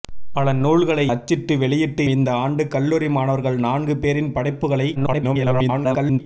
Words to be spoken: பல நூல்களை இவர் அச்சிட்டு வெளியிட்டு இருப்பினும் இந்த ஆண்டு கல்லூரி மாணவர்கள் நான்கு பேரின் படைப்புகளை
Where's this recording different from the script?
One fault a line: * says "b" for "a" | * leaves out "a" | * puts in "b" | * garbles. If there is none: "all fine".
* leaves out "இவர்"
* leaves out "இருப்பினும்"
* garbles